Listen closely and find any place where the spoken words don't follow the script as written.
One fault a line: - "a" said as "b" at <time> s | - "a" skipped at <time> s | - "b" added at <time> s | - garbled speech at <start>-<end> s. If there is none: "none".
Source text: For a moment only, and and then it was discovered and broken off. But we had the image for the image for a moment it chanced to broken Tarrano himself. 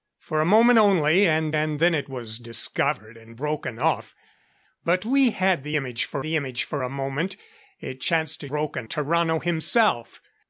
none